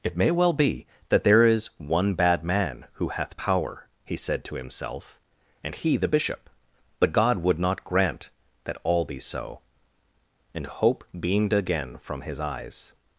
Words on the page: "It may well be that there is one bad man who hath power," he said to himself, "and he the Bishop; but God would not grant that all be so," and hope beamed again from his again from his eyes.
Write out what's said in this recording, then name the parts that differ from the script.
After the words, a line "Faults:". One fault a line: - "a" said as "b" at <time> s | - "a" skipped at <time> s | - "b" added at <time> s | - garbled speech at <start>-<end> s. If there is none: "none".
"It may well be that there is one bad man who hath power," he said to himself, "and he the Bishop; but God would not grant that all be so," and hope beamed again from his eyes.
Faults:
- "again from his" skipped at 12.4 s